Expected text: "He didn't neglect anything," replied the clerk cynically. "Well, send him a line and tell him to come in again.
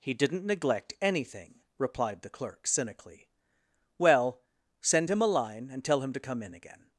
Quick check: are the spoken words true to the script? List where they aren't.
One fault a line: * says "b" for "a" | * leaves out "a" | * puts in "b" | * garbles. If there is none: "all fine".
all fine